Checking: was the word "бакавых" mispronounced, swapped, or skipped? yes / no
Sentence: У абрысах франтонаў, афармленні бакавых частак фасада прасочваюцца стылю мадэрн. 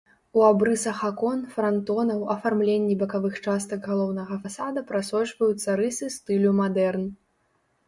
no